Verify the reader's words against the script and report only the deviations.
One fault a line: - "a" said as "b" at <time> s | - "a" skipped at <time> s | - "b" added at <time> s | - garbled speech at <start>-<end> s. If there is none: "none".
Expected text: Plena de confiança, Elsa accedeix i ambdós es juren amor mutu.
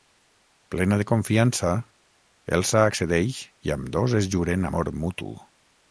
none